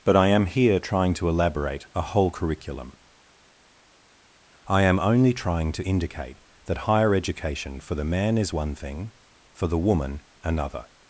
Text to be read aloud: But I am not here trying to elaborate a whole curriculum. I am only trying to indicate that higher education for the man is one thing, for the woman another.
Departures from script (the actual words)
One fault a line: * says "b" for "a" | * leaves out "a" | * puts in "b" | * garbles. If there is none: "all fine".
* leaves out "not"